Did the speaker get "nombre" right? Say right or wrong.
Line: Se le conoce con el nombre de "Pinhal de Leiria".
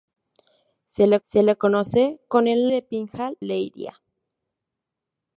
wrong